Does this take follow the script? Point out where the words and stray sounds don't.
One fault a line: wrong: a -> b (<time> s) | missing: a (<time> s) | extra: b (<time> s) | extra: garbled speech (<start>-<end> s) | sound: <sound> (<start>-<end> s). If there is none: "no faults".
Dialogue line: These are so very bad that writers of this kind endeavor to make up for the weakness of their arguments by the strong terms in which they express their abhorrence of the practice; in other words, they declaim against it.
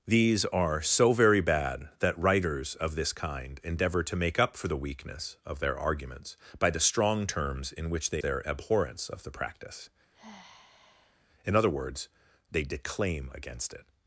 missing: express (8.2 s)
sound: sigh (10.1-11.3 s)